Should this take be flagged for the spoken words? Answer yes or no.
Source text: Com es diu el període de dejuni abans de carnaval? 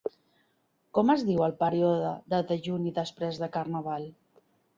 yes